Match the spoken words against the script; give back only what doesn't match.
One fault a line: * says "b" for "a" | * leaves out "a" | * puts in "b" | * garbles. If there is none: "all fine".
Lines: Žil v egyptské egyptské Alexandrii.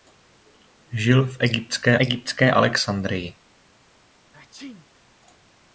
all fine